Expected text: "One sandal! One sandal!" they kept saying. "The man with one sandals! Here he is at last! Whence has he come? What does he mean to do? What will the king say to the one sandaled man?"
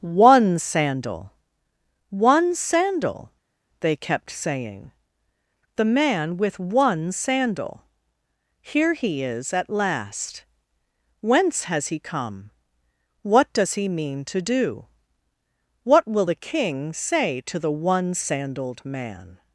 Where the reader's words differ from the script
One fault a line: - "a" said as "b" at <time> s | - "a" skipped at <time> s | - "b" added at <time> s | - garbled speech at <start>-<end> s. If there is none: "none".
- "sandals" said as "sandal" at 7.1 s